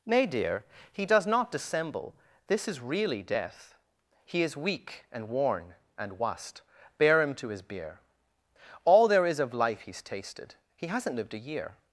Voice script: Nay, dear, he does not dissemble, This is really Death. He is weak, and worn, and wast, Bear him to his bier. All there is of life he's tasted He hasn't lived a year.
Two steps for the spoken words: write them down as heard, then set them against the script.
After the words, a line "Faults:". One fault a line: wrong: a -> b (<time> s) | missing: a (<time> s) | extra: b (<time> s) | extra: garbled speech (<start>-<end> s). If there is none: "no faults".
Nay, dear, he does not dissemble, This is really Death. He is weak, and worn, and wast, Bear him to his bier. All there is of life he's tasted He hasn't lived a year.
Faults:
no faults